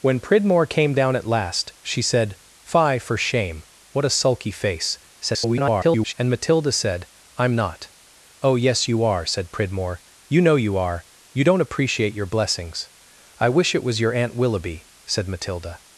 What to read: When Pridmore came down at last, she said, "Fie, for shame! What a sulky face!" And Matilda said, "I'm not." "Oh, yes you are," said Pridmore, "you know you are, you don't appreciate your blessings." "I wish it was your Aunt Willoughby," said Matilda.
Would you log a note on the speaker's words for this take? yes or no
yes